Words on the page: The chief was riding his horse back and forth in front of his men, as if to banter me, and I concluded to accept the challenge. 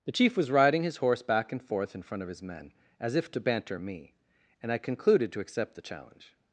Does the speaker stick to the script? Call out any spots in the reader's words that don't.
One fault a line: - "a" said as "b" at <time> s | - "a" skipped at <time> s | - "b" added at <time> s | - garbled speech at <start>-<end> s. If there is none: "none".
none